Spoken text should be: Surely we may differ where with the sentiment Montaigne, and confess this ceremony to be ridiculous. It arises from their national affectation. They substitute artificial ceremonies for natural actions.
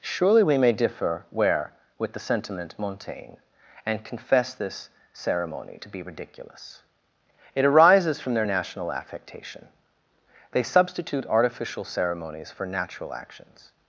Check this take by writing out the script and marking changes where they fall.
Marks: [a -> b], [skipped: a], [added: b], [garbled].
Surely we may differ where with the sentiment Montaigne, and confess this ceremony to be ridiculous. It arises from their national affectation. They substitute artificial ceremonies for natural actions.